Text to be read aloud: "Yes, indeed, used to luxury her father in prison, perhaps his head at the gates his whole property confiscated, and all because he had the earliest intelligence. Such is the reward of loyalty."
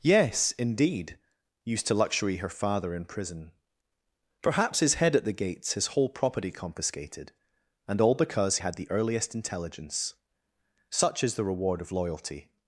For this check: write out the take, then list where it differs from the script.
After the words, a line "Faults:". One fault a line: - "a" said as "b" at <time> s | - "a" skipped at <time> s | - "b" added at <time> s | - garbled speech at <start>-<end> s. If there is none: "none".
"Yes, indeed, used to luxury her father in prison, perhaps his head at the gates his whole property confiscated, and all because had the earliest intelligence. Such is the reward of loyalty."
Faults:
- "he" skipped at 8.6 s